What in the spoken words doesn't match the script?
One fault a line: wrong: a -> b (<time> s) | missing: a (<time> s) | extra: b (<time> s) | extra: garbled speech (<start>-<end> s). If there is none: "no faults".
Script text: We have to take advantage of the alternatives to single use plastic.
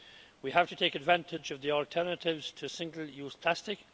no faults